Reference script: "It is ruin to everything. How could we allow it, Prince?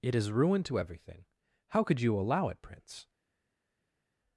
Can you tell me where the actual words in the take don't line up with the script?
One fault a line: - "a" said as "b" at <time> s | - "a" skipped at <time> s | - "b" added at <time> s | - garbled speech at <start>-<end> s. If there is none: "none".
- "we" said as "you" at 2.0 s